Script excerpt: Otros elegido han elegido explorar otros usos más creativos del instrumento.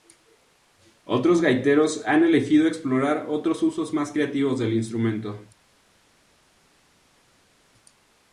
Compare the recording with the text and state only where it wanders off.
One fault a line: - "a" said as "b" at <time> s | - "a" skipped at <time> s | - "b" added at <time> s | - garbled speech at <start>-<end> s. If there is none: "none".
- "elegido" said as "gaiteros" at 1.4 s